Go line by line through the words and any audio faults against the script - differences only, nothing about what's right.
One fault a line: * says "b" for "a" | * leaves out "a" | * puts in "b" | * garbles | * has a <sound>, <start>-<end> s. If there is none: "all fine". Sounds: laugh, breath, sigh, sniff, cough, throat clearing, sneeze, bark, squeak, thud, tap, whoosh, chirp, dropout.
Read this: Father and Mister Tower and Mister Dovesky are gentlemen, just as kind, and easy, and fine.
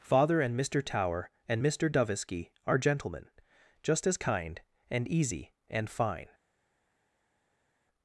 all fine